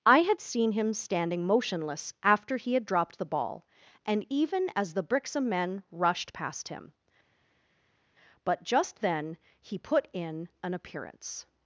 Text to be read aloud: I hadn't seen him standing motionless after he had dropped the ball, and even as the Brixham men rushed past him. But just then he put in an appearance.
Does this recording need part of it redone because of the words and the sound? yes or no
yes